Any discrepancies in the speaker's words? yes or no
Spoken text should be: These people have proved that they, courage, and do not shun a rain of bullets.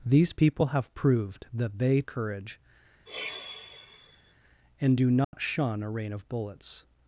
no